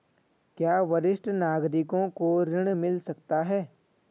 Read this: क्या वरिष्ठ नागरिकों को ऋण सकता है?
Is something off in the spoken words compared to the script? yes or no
yes